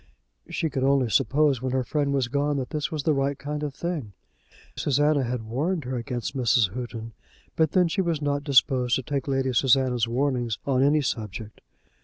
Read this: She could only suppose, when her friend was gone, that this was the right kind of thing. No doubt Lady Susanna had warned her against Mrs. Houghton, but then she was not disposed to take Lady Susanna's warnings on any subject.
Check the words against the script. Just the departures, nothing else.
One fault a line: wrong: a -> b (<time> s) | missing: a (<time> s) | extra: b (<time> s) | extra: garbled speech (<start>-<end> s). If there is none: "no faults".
missing: No doubt Lady (4.1 s)